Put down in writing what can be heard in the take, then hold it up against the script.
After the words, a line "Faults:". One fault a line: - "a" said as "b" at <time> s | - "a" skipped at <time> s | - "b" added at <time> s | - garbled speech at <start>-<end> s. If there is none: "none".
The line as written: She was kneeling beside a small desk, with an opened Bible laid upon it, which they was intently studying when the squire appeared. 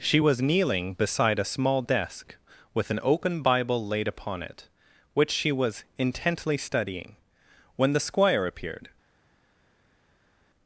She was kneeling beside a small desk, with an open Bible laid upon it, which she was intently studying when the squire appeared.
Faults:
- "opened" said as "open" at 3.0 s
- "they" said as "she" at 5.3 s